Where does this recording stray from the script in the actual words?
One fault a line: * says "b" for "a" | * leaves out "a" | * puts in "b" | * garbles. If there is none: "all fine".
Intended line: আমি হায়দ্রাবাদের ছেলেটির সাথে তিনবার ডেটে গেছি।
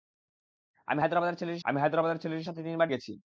* puts in "আমি হায়দ্রাবাদের ছেলেটির"
* leaves out "ডেটে"